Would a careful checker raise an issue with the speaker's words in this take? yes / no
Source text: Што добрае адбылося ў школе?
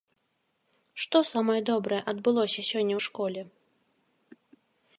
yes